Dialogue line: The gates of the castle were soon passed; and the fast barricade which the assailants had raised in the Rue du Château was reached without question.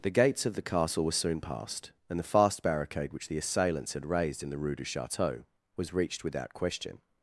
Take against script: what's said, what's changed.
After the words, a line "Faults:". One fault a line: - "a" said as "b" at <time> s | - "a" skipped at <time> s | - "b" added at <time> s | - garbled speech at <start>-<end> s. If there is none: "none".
The gates of the castle were soon passed; and the fast barricade which the assailants had raised in the Rue du Château was reached without question.
Faults:
none